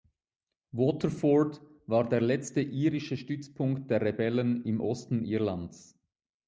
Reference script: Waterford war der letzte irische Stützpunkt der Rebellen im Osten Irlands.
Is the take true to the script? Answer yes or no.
yes